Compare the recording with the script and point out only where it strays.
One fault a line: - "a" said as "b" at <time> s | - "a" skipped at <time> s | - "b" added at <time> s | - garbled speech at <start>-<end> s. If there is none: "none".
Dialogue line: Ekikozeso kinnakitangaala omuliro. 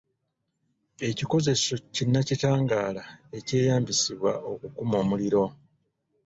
- "ekyeyambisibwa okukuma" added at 3.4 s